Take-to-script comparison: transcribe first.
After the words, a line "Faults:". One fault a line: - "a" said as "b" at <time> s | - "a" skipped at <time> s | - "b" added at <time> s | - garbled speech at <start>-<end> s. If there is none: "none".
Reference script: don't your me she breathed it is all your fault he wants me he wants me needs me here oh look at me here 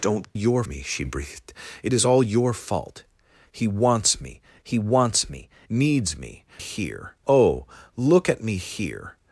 don't your me she breathed it is all your fault he wants me he wants me needs me here oh look at me here
Faults:
none